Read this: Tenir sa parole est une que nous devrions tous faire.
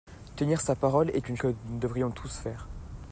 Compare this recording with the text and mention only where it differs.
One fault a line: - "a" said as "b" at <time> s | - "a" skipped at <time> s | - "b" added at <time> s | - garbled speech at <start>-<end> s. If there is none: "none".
none